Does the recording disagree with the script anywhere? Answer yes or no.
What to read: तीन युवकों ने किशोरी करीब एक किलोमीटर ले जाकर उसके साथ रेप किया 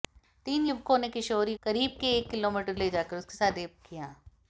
no